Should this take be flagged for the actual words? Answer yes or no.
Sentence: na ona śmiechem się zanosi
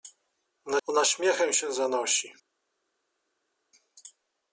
no